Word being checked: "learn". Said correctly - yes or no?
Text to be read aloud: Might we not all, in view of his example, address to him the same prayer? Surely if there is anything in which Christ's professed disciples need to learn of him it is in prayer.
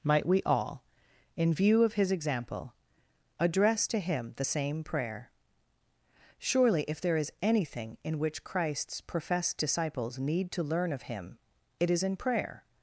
yes